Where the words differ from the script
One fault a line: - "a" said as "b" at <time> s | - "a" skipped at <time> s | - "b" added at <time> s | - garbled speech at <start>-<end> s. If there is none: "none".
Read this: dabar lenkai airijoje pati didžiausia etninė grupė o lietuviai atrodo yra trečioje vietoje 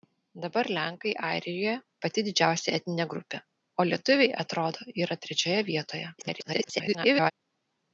- garbled speech at 6.2-7.3 s